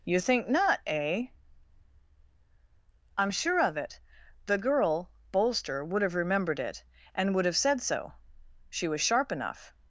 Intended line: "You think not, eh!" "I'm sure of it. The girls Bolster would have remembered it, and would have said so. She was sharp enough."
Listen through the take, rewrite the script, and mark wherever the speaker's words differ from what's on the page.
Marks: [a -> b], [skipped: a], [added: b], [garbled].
"You think not, eh!" "I'm sure of it. The [girls -> girl] Bolster would have remembered it, and would have said so. She was sharp enough."